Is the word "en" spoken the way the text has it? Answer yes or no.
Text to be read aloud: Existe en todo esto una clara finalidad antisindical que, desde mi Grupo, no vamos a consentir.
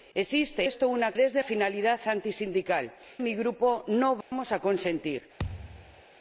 no